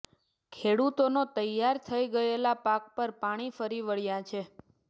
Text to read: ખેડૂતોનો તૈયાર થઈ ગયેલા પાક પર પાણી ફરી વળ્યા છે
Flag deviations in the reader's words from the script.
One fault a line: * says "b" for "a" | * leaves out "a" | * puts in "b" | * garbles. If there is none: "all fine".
all fine